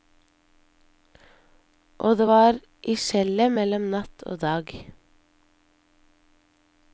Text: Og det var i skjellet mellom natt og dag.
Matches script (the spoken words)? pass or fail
pass